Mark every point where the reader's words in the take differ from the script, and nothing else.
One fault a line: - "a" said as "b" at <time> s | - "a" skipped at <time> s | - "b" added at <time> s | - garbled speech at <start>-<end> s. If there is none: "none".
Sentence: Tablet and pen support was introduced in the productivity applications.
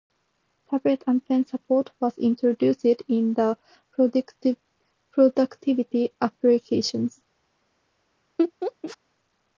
none